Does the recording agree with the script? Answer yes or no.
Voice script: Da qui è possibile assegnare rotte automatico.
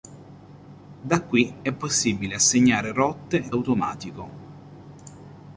yes